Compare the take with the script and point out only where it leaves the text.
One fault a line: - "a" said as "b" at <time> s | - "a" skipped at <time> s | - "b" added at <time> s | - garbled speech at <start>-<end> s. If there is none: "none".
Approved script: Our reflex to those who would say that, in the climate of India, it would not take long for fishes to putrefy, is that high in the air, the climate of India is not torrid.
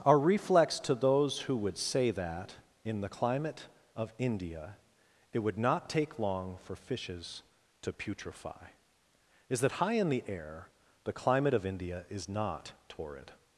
none